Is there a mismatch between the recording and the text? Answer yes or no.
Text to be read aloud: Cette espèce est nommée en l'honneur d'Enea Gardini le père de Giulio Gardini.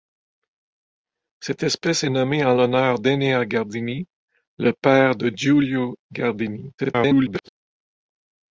yes